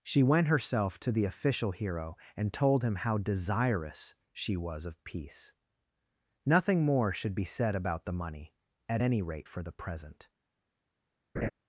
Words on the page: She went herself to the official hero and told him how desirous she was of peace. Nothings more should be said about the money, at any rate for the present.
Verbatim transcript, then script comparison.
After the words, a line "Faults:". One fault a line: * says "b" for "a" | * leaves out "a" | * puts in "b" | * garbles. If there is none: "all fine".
She went herself to the official hero and told him how desirous she was of peace. Nothing more should be said about the money, at any rate for the present.
Faults:
* says "Nothing" for "Nothings"